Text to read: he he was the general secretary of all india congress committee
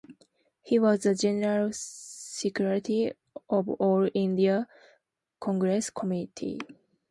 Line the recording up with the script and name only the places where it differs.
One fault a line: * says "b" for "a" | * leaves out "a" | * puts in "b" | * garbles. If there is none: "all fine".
* leaves out "he"